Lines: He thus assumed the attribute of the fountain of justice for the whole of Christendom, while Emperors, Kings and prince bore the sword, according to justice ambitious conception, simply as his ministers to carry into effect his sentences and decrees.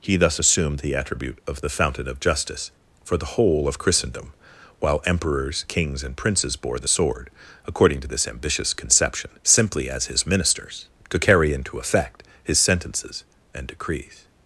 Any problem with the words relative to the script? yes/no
yes